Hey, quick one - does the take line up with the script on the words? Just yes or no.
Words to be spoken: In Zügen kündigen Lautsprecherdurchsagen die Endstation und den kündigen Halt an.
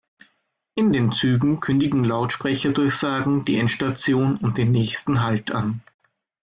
no